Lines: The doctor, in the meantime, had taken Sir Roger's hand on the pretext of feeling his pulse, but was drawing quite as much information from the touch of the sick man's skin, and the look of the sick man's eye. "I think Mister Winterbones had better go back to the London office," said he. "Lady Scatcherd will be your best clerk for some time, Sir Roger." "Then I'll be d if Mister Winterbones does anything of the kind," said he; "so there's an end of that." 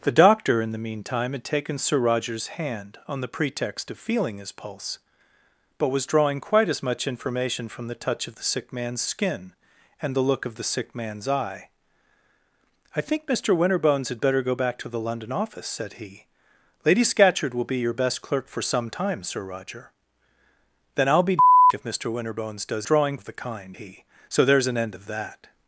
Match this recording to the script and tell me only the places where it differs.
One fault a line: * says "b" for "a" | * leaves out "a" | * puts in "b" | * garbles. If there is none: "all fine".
* says "drawing" for "anything"
* leaves out "said"